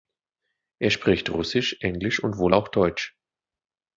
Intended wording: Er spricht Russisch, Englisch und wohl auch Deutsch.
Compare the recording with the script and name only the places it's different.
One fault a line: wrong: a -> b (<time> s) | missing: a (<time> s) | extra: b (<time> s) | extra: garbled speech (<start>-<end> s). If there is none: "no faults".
no faults